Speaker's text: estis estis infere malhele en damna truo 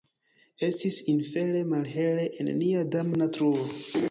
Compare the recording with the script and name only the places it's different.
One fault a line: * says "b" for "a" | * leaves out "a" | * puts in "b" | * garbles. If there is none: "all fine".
* leaves out "estis"
* puts in "nia"